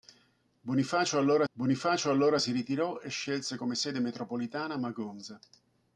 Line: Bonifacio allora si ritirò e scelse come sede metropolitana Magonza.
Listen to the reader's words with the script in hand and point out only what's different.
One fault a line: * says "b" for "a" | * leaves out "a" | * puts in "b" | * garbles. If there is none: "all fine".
* puts in "bonifacio allora"